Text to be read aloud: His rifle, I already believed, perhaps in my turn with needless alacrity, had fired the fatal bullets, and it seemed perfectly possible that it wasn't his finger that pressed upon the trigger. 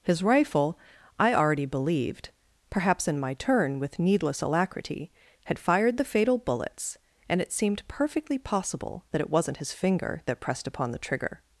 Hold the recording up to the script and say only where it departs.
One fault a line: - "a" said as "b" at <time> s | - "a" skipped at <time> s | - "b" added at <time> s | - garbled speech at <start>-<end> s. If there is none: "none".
none